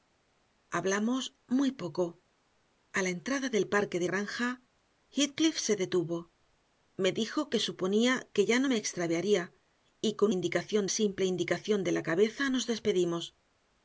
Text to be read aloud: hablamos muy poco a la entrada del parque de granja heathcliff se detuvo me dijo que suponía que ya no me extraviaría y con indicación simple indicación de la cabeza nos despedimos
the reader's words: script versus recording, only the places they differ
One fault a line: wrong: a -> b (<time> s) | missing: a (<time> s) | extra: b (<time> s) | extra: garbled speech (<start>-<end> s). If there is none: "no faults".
no faults